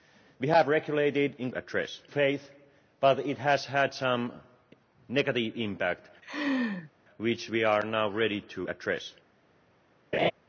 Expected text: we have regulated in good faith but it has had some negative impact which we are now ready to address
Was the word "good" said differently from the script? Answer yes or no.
yes